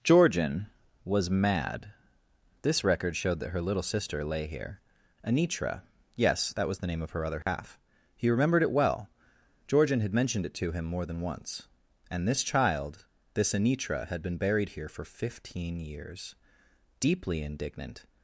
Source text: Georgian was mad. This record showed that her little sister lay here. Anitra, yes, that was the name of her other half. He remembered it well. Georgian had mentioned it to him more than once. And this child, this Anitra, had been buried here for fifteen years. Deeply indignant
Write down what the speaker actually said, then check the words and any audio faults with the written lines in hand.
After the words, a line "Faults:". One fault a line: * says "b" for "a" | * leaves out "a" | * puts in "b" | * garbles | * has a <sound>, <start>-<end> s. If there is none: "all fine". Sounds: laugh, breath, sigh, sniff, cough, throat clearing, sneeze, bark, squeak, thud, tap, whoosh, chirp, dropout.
Georgian was mad. This record showed that her little sister lay here. Anitra, yes, that was the name of her other half. He remembered it well. Georgian had mentioned it to him more than once. And this child, this Anitra, had been buried here for fifteen years. Deeply indignant
Faults:
* has a dropout, 7.4-7.5 s